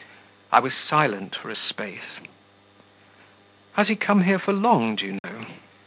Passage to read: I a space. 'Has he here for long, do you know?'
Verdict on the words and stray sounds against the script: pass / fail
fail